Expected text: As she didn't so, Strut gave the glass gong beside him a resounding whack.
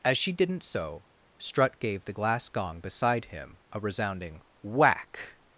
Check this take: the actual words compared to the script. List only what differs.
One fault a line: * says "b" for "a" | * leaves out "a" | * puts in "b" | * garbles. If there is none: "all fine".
all fine